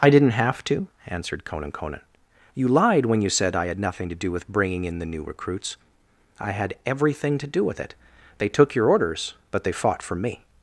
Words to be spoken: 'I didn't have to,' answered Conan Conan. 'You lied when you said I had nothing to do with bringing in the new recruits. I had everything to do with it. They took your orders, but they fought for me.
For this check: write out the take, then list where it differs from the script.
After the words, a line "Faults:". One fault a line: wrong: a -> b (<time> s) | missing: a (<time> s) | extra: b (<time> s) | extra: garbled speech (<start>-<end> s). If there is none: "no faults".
'I didn't have to,' answered Conan Conan. 'You lied when you said I had nothing to do with bringing in the new recruits. I had everything to do with it. They took your orders, but they fought for me.
Faults:
no faults